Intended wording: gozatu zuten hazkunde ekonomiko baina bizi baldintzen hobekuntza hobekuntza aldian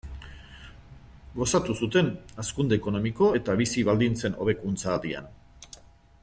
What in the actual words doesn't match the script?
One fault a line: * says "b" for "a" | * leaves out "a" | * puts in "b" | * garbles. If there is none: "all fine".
* says "eta" for "baina"
* leaves out "hobekuntza"